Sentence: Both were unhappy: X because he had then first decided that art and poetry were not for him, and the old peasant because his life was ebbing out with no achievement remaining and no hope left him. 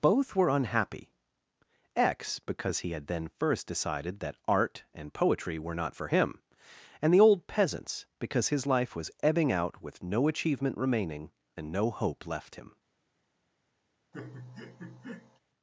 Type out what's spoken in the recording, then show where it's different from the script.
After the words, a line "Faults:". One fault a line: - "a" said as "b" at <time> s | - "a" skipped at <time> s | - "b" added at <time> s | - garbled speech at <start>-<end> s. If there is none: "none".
Both were unhappy: X because he had then first decided that art and poetry were not for him, and the old peasants because his life was ebbing out with no achievement remaining and no hope left him.
Faults:
- "peasant" said as "peasants" at 7.5 s